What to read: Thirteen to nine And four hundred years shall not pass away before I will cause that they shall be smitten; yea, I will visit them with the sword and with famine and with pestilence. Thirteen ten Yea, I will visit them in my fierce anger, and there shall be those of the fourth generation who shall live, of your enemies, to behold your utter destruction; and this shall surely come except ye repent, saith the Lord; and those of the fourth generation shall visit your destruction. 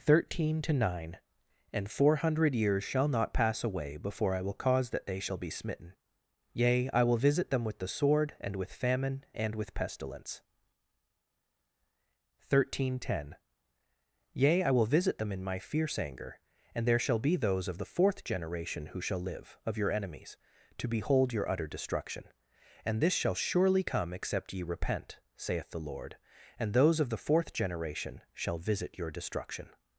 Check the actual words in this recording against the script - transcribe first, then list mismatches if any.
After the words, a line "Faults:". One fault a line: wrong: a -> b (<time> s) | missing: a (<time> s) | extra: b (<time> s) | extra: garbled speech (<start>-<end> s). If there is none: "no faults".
Thirteen to nine And four hundred years shall not pass away before I will cause that they shall be smitten; yea, I will visit them with the sword and with famine and with pestilence. Thirteen ten Yea, I will visit them in my fierce anger, and there shall be those of the fourth generation who shall live, of your enemies, to behold your utter destruction; and this shall surely come except ye repent, saith the Lord; and those of the fourth generation shall visit your destruction.
Faults:
no faults